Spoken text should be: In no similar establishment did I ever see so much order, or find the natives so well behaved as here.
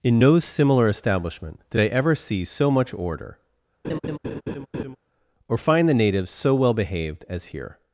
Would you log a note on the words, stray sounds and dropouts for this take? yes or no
yes